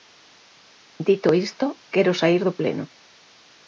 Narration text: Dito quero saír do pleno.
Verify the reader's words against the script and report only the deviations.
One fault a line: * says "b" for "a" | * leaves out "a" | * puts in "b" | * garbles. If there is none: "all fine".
* puts in "isto"